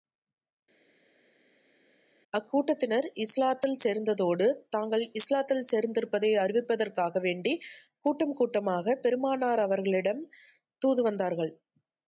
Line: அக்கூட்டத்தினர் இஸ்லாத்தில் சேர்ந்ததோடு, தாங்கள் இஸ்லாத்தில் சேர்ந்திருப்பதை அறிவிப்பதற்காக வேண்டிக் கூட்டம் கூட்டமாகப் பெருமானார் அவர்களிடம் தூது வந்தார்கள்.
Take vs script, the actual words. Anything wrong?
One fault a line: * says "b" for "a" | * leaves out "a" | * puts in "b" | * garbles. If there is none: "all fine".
all fine